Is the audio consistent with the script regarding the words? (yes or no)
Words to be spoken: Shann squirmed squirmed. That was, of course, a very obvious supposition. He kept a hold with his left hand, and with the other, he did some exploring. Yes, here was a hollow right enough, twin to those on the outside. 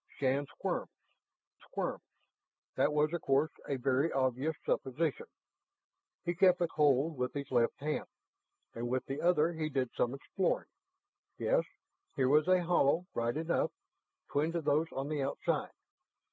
yes